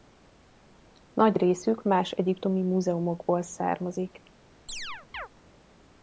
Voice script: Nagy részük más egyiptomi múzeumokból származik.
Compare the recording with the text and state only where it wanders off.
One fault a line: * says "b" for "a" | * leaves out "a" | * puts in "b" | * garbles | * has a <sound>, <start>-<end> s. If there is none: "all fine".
* has a chirp, 4.7-5.3 s